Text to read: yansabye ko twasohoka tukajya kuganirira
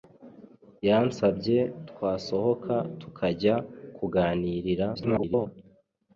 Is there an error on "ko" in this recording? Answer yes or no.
yes